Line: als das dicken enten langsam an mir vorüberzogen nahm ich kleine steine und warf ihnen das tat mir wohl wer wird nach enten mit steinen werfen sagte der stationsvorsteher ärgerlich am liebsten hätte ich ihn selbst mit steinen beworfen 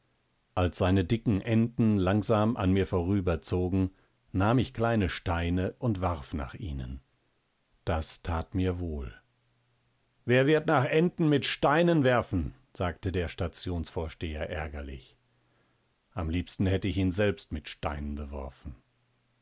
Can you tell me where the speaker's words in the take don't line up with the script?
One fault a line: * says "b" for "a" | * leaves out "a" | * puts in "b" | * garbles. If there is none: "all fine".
* says "seine" for "das"
* puts in "nach"